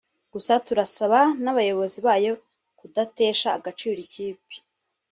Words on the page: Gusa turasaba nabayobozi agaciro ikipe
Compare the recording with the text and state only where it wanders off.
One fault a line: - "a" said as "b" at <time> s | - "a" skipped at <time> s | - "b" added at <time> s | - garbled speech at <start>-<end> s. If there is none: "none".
- "bayo kudatesha" added at 2.1 s